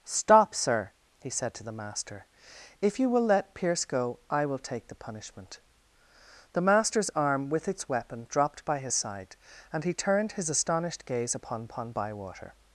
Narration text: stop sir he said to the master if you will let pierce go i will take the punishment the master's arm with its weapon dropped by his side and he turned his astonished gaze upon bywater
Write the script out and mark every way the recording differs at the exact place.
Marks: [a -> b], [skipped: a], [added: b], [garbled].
stop sir he said to the master if you will let pierce go i will take the punishment the master's arm with its weapon dropped by his side and he turned his astonished gaze upon [added: upon] bywater